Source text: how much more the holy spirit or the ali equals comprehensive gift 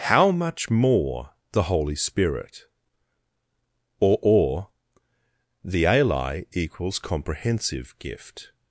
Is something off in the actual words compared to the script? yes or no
yes